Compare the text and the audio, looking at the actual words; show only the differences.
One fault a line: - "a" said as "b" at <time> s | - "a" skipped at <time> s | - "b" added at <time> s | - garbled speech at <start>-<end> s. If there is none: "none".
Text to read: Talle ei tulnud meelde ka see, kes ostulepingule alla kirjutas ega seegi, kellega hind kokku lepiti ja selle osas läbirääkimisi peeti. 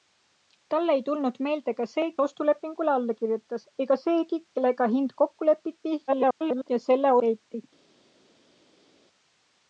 - "kes" skipped at 2.0 s
- garbled speech at 6.1-6.7 s
- "osas läbirääkimisi" skipped at 7.1 s